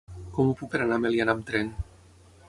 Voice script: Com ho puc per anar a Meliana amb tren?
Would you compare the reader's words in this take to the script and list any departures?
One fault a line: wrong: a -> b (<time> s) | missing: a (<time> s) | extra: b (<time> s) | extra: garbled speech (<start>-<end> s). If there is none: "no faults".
no faults